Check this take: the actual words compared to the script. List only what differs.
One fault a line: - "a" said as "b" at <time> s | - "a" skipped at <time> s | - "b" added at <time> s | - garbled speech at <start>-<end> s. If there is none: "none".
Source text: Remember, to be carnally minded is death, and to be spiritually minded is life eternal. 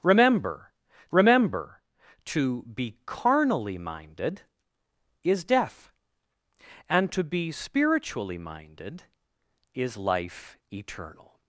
- "remember" added at 1.1 s